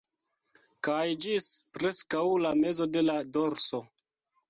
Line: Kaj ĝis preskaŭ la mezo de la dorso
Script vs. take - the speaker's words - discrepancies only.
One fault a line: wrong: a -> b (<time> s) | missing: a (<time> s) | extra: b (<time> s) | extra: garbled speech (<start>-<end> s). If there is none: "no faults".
no faults